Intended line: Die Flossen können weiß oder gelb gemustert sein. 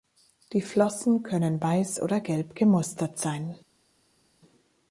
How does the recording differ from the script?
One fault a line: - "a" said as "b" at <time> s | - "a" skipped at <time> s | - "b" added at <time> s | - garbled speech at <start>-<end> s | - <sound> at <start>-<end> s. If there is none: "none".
none